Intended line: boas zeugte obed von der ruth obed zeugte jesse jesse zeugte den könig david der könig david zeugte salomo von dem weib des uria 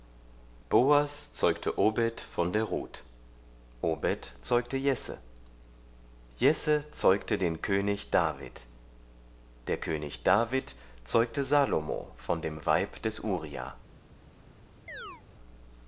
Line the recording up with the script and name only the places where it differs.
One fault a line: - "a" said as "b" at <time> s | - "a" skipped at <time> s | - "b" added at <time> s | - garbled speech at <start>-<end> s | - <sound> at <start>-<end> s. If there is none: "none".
- chirp at 14.9-15.2 s